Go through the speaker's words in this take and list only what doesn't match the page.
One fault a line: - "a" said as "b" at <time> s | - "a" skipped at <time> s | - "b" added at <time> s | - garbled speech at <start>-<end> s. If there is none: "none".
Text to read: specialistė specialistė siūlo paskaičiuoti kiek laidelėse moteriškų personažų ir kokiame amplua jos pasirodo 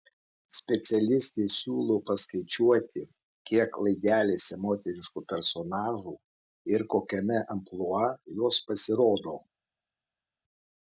- "specialistė" skipped at 1.4 s